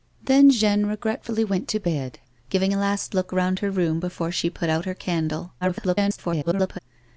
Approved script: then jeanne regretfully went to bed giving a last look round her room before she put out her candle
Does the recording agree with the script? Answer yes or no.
no